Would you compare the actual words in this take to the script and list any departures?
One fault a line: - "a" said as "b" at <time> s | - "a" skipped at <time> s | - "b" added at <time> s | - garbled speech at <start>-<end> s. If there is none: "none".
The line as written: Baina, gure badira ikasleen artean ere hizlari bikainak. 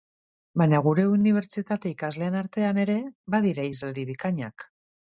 - "badira" said as "unibertsitate" at 1.2 s
- "badira" added at 3.4 s